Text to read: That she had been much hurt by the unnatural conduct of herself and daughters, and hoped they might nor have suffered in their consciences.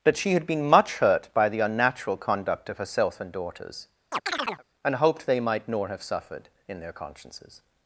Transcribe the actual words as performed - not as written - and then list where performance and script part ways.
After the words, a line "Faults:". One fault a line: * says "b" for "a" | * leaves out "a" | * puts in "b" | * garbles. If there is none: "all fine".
That she had been much hurt by the unnatural conduct of herself and daughters, and hoped they might nor have suffered in their consciences.
Faults:
all fine